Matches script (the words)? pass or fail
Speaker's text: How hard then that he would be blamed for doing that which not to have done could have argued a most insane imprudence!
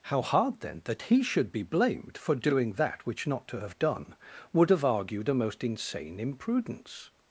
fail